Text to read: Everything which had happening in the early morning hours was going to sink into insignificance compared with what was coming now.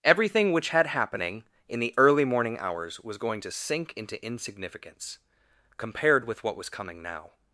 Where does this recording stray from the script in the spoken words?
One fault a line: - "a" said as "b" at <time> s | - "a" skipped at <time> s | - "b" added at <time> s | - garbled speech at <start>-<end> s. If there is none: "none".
none